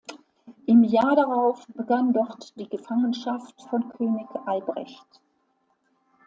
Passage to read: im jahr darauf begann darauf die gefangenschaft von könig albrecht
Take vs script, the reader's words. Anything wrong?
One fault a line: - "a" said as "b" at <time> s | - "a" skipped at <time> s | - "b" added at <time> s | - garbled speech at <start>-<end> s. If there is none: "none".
- "darauf" said as "dort" at 2.1 s